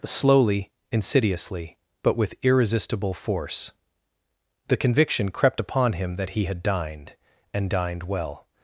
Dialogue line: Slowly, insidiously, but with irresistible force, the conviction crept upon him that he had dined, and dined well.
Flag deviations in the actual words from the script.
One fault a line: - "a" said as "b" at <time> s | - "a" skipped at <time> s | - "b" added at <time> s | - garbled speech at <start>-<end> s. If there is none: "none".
none